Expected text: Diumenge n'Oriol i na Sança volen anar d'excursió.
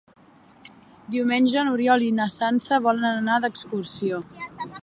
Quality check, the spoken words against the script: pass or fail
pass